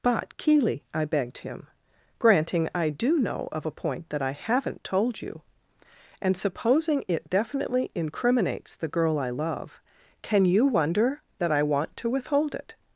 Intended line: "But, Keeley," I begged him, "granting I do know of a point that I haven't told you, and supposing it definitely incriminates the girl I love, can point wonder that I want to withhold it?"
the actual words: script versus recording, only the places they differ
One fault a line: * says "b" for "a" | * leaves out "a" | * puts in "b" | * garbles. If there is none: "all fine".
* says "you" for "point"